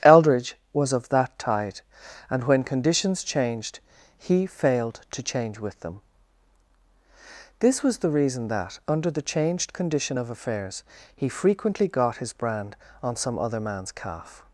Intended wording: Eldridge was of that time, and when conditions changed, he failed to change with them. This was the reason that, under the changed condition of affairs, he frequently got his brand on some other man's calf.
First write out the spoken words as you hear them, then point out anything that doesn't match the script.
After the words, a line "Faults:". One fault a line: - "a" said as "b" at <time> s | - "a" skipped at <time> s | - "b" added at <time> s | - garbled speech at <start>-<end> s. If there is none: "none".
Eldridge was of that tide, and when conditions changed, he failed to change with them. This was the reason that, under the changed condition of affairs, he frequently got his brand on some other man's calf.
Faults:
- "time" said as "tide" at 1.4 s